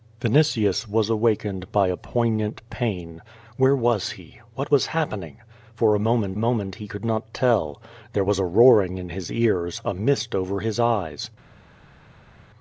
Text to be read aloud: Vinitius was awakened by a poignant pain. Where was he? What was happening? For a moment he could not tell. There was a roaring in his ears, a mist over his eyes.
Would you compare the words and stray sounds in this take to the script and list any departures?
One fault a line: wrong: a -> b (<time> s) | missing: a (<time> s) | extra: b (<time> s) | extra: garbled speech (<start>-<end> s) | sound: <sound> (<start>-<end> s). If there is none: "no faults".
extra: moment (6.4 s)